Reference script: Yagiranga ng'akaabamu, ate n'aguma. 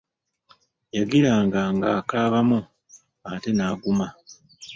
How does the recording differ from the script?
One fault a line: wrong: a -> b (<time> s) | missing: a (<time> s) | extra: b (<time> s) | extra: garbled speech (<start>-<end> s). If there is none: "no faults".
no faults